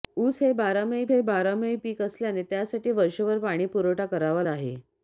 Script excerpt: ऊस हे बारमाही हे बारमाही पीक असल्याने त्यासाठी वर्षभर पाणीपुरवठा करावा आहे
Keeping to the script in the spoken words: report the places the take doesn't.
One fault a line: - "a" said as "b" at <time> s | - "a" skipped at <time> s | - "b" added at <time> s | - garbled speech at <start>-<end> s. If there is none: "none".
none